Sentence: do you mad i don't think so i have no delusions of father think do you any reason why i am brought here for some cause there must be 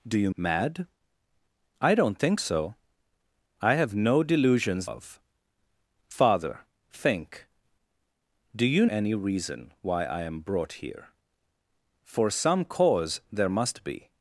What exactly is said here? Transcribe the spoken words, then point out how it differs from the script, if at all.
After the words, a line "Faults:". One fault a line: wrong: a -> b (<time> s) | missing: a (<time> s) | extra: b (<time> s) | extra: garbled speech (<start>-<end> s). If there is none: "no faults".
do you mad i don't think so i have no delusions of father think do you any reason why i am brought here for some cause there must be
Faults:
no faults